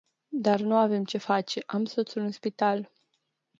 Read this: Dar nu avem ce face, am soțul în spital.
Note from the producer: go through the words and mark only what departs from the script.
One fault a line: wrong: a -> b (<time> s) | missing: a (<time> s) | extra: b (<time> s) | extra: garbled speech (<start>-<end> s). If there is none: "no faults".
no faults